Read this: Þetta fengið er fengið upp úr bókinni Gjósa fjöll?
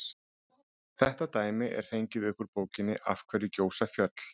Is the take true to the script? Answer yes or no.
no